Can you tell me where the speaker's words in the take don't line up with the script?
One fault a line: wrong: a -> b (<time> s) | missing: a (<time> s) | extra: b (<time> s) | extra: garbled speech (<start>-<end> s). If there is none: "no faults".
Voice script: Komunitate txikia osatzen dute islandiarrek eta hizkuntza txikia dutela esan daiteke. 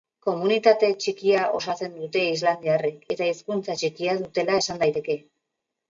no faults